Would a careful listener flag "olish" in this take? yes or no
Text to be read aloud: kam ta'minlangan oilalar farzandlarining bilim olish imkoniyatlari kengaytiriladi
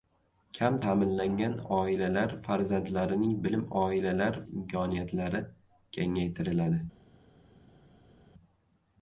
yes